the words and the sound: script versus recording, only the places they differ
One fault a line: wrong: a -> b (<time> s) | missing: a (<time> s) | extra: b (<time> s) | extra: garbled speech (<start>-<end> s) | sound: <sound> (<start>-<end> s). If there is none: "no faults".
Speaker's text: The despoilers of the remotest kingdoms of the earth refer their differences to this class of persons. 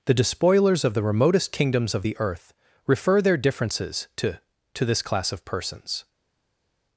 extra: to (4.7 s)